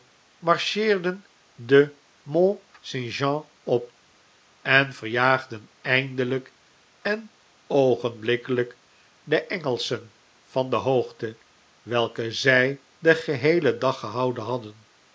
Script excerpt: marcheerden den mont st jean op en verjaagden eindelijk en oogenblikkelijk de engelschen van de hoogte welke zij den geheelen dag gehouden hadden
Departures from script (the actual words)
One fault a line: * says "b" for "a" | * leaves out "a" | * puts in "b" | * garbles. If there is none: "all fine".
all fine